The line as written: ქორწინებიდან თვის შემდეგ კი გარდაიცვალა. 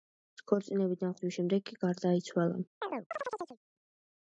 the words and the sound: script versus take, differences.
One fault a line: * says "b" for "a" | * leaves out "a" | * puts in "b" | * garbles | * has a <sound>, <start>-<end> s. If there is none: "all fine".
* has a chirp, 2.8-3.6 s